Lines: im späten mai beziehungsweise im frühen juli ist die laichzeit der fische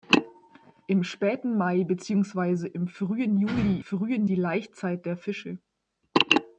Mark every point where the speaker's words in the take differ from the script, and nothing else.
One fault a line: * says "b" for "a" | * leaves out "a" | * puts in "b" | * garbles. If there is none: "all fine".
* says "frühen" for "ist"